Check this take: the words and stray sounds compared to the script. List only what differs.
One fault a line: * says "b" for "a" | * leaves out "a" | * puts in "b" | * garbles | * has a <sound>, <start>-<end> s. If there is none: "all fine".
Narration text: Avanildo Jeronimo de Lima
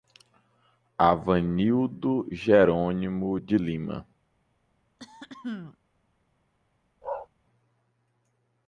* has a throat clearing, 5.0-5.8 s
* has a bark, 7.0-7.3 s